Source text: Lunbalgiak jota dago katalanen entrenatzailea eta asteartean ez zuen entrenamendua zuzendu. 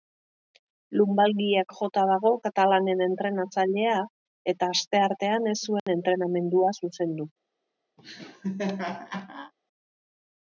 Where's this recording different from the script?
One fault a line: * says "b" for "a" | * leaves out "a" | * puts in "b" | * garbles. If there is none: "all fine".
all fine